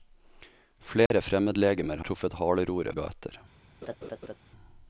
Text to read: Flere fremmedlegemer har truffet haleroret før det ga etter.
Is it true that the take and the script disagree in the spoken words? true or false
true